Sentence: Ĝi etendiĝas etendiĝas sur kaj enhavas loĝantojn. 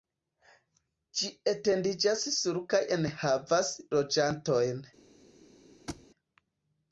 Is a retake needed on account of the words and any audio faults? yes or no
yes